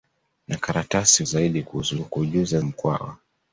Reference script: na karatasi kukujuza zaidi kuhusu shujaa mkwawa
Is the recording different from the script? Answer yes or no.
yes